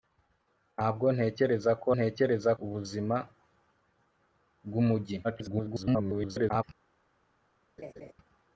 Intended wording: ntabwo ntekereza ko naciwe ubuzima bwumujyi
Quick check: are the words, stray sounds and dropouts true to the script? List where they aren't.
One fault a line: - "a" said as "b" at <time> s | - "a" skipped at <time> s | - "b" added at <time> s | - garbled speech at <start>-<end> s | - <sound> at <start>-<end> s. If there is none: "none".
- "naciwe" said as "ntekereza" at 1.9 s
- garbled speech at 5.2-6.6 s
- laugh at 7.8-8.1 s